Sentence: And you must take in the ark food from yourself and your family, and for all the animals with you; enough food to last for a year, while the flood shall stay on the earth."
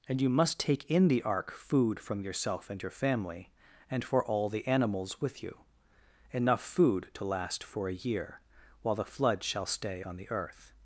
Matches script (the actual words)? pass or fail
pass